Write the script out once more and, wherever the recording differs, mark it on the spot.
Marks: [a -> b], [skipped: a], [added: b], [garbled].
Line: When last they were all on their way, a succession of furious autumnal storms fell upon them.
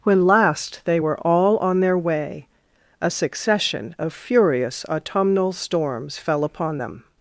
When last they were all on their way, a succession of furious autumnal storms fell upon them.